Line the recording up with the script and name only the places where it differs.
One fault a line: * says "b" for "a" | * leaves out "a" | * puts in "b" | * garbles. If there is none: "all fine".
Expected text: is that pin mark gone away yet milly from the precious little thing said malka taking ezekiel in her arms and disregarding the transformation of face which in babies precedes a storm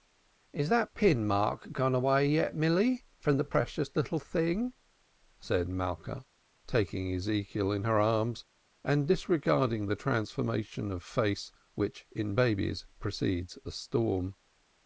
all fine